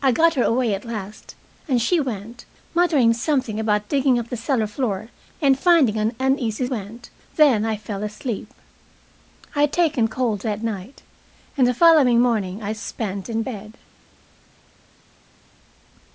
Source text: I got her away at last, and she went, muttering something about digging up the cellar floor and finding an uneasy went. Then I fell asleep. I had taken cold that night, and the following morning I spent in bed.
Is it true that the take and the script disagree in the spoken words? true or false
false